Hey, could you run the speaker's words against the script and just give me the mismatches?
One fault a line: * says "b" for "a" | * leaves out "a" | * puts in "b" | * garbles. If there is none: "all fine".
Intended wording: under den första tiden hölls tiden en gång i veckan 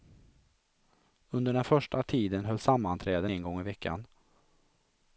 * says "sammanträden" for "tiden"